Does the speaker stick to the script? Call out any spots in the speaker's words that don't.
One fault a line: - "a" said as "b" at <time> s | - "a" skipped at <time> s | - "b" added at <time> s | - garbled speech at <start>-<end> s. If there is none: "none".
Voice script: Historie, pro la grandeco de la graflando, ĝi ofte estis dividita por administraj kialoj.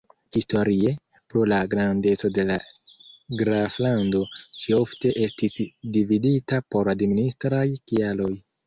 none